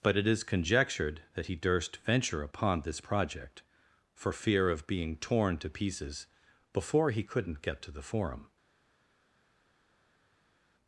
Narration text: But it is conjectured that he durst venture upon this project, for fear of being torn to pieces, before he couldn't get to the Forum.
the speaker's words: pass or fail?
pass